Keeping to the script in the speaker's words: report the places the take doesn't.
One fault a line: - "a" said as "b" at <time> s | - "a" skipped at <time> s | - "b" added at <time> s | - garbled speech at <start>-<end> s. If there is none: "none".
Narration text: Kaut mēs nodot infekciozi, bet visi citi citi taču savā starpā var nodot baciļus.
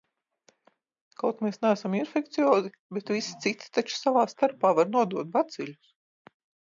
- "nodot" said as "neesam" at 1.6 s
- "citi" skipped at 3.7 s